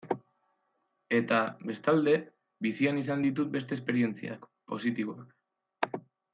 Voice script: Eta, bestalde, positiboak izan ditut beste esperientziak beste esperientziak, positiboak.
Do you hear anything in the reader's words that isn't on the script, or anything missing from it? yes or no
yes